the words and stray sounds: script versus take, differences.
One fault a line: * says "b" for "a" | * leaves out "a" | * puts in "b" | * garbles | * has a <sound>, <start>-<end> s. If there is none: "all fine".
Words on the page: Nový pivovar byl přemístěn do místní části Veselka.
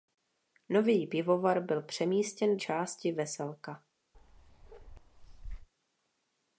* leaves out "do místní"
* has a bark, 4.1-5.7 s